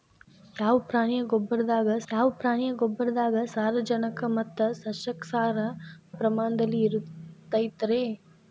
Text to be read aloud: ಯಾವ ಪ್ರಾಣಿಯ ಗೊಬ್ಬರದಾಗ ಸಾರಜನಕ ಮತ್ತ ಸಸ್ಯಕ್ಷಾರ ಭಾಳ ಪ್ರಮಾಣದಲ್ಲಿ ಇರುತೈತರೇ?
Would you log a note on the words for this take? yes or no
yes